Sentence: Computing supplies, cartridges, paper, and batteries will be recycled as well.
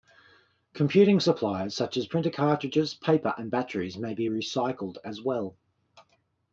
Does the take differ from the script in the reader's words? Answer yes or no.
yes